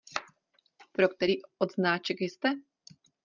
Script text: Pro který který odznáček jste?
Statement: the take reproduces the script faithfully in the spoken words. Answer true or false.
false